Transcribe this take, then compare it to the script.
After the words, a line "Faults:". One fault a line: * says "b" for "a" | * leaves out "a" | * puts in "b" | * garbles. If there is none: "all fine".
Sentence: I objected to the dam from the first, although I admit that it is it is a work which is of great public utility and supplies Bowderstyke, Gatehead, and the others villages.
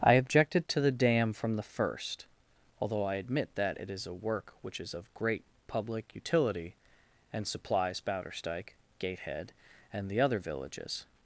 I objected to the dam from the first, although I admit that it is a work which is of great public utility and supplies Bowderstyke, Gatehead, and the other villages.
Faults:
* leaves out "it is"
* says "other" for "others"